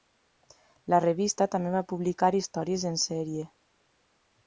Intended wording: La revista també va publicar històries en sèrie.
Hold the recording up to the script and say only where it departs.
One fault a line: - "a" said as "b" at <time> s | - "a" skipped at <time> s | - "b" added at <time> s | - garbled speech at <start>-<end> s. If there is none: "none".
none